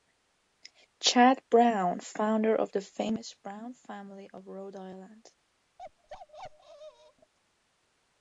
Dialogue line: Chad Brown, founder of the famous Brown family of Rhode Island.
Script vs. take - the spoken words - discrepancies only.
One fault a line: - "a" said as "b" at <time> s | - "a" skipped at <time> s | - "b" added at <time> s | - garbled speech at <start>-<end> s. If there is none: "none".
none